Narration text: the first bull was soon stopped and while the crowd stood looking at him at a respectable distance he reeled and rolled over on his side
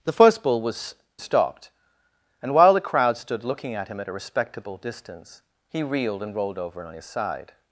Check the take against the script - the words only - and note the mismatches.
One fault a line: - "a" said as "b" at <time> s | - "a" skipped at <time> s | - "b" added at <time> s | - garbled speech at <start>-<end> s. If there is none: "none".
- "soon" skipped at 0.9 s